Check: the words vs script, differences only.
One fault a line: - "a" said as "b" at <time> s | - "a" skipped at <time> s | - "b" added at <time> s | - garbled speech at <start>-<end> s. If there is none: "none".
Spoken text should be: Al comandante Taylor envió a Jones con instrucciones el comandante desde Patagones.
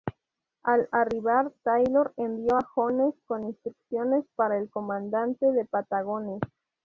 - "comandante" said as "arribar" at 0.9 s
- "para" added at 4.4 s
- "desde" said as "de" at 5.5 s